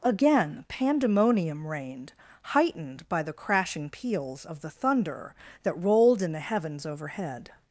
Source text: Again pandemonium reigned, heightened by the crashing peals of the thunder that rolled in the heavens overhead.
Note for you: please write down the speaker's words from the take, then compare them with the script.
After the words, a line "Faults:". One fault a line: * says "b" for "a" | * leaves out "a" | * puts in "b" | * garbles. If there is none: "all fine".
Again pandemonium reigned, heightened by the crashing peals of the thunder that rolled in the heavens overhead.
Faults:
all fine